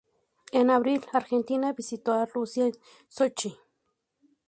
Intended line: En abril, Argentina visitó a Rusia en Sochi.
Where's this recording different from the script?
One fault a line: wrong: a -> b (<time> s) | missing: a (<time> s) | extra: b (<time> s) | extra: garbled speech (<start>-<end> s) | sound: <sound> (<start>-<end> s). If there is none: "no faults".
no faults